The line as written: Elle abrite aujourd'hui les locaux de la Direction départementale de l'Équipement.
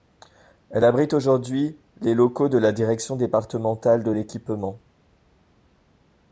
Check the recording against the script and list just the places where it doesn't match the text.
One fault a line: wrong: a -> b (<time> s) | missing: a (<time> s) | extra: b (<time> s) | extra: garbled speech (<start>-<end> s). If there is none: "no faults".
no faults